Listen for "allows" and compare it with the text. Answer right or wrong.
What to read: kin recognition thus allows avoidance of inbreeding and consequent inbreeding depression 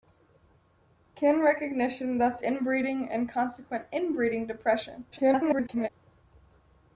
wrong